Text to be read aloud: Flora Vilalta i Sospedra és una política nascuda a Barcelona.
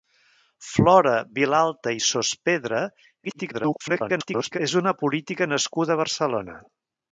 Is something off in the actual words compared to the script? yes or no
yes